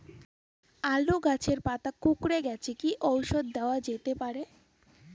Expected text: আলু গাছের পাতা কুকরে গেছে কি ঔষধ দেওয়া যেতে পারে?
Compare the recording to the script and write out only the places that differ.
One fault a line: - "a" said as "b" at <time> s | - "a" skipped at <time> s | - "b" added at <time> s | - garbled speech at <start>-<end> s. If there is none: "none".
none